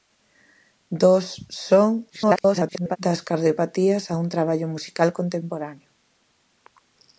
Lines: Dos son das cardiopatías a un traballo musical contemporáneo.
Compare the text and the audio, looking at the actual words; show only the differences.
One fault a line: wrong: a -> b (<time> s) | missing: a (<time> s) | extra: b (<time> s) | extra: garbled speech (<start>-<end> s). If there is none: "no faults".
extra: garbled speech (2.1-3.0 s)